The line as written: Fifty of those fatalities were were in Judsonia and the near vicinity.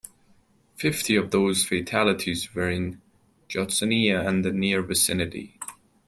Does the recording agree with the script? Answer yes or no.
no